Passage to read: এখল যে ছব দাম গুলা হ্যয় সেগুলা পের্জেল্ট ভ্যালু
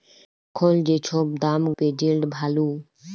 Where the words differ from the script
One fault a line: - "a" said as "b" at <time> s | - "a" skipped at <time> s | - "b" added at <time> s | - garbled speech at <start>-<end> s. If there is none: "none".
- "গুলা হ্যয় সেগুলা" skipped at 1.6 s